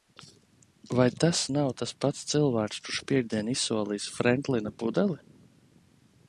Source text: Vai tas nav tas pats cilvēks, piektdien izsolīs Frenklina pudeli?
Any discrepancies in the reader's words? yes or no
yes